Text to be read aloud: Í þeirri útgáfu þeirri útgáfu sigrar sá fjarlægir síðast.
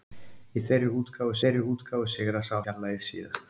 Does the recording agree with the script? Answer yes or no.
yes